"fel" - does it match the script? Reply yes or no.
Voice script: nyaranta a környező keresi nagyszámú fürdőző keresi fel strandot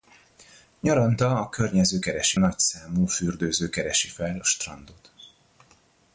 yes